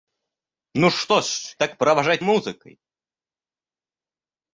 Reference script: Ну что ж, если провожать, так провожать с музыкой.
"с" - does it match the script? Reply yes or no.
no